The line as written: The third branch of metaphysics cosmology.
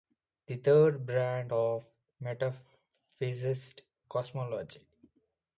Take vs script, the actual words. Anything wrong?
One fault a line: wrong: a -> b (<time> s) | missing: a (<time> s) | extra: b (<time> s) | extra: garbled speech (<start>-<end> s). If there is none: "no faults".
no faults